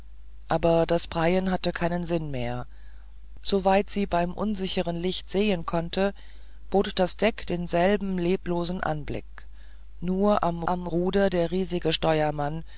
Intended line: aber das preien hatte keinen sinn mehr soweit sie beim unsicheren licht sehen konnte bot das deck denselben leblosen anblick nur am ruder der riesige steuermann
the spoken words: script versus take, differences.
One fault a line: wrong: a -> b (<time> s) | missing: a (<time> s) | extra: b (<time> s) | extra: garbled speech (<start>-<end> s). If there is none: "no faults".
extra: am (10.7 s)